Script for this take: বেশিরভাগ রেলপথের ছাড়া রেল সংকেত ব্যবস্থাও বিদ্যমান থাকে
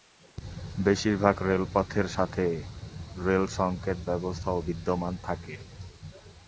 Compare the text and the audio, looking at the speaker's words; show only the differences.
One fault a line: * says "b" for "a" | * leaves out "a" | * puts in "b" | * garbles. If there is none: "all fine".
* says "সাথে" for "ছাড়া"